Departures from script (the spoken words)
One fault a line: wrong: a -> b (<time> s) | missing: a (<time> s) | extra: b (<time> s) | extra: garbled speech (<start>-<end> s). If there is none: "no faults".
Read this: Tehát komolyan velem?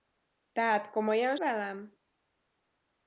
no faults